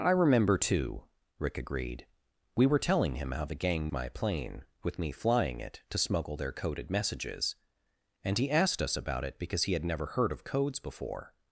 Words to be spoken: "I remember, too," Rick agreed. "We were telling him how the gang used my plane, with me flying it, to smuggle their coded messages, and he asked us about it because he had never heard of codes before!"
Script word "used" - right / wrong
wrong